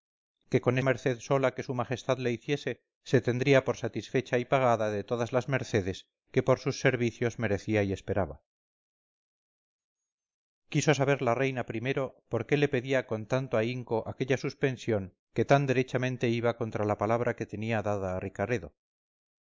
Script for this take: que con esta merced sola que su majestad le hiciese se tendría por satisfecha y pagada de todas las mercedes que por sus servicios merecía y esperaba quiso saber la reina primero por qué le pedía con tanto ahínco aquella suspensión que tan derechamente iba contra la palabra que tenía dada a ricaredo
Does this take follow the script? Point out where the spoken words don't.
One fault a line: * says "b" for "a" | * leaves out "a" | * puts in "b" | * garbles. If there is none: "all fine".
* leaves out "esta"